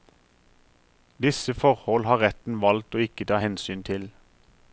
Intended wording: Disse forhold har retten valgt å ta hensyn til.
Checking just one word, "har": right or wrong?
right